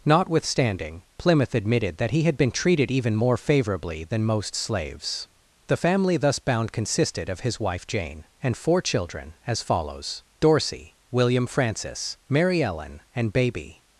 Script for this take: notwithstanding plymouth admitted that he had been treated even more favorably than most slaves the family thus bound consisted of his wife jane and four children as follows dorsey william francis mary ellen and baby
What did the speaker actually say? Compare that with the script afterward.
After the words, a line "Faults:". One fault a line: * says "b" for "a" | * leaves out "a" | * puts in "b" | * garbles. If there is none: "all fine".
notwithstanding plymouth admitted that he had been treated even more favorably than most slaves the family thus bound consisted of his wife jane and four children as follows dorsey william francis mary ellen and baby
Faults:
all fine